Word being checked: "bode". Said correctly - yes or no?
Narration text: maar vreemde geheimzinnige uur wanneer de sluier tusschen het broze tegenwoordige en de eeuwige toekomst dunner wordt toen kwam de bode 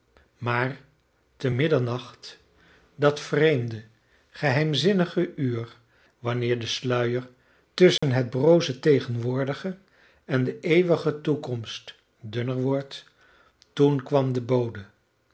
yes